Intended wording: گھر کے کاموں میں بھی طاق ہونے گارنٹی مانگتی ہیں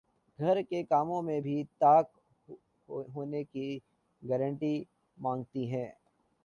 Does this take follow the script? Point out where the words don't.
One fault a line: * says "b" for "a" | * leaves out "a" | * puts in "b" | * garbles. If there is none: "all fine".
* puts in "کی"